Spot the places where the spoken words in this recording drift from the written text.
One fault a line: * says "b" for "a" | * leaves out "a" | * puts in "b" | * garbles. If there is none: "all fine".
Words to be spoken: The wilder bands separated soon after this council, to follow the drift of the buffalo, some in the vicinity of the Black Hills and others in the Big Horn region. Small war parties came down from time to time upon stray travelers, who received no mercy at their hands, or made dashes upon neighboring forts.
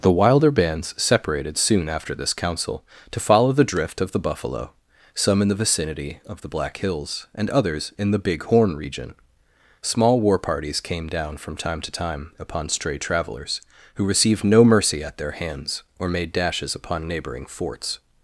all fine